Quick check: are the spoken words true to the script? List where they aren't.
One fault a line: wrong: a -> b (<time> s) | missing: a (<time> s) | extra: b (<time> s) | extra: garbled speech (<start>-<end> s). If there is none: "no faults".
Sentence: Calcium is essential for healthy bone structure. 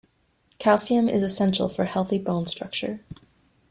no faults